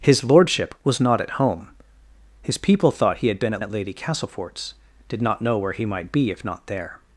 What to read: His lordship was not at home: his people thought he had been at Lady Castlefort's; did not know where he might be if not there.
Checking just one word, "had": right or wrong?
right